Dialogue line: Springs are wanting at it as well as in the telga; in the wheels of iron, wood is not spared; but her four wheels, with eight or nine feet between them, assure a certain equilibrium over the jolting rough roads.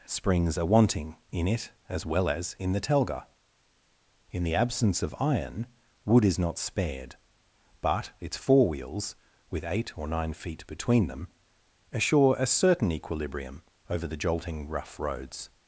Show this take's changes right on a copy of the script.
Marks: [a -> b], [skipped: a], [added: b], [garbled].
Springs are wanting [at -> in] it as well as in the telga; in the [wheels -> absence] of iron, wood is not spared; but [her -> its] four wheels, with eight or nine feet between them, assure a certain equilibrium over the jolting rough roads.